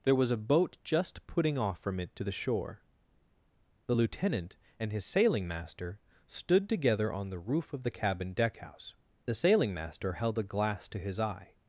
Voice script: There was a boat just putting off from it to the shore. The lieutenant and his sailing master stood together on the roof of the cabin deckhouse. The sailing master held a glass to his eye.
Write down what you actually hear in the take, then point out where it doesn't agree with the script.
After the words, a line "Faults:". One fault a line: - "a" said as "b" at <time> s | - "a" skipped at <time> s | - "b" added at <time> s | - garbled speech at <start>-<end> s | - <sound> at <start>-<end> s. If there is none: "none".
There was a boat just putting off from it to the shore. The lieutenant and his sailing master stood together on the roof of the cabin deckhouse. The sailing master held a glass to his eye.
Faults:
none